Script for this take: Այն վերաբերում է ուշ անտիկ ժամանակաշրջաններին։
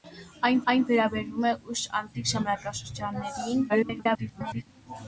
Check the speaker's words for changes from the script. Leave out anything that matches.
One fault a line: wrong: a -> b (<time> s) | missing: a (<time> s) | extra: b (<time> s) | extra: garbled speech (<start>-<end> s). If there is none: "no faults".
extra: այն (0.7 s)
extra: garbled speech (3.7-4.7 s)